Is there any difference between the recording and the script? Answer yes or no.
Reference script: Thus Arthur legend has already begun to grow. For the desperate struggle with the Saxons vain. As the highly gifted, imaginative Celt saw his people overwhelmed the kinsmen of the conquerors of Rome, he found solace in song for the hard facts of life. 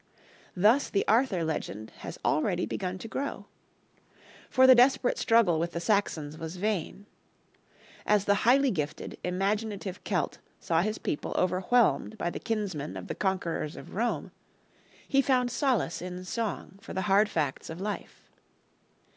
yes